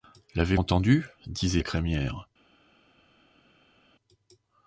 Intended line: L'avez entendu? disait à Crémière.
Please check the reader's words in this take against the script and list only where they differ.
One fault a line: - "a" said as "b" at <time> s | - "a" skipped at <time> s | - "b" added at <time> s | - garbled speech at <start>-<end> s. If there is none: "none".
none